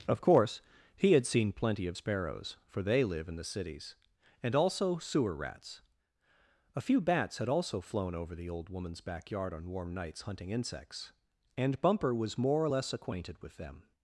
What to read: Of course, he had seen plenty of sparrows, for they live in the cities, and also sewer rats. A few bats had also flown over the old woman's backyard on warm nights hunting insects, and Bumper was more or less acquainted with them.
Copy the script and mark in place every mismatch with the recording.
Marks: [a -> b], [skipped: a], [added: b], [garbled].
Of course, he had seen plenty of sparrows, for they live in the cities, and also sewer rats. A few bats had also flown over the old woman's backyard on warm nights hunting insects, and Bumper was more or less acquainted with them.